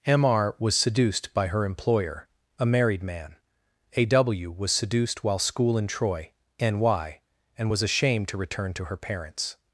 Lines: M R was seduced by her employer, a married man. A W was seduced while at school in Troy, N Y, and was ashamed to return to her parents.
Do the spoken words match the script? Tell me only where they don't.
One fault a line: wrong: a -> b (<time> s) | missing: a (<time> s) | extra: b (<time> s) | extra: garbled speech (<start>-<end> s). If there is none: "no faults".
missing: at (5.4 s)